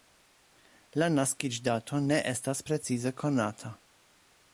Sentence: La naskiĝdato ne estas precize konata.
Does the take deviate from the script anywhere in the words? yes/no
no